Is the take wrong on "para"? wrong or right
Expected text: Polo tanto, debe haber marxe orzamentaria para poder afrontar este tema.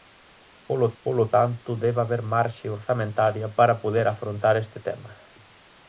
right